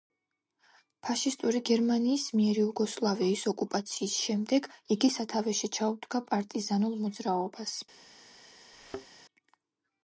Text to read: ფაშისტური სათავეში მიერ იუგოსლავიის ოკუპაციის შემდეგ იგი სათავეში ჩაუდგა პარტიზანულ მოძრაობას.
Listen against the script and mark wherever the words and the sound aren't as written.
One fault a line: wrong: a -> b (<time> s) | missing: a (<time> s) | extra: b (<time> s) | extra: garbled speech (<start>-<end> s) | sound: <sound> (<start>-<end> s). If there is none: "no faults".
wrong: სათავეში -> გერმანიის (1.7 s)
sound: thud (8.7-9.1 s)